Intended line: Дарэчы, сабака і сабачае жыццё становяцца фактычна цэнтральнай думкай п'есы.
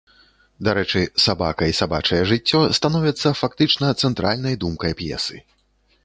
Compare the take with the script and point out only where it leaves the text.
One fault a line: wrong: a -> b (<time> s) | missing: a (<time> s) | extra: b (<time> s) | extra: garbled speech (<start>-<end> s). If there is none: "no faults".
no faults